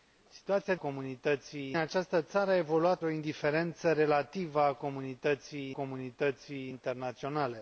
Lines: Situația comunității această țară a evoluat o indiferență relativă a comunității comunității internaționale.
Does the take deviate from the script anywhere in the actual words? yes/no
no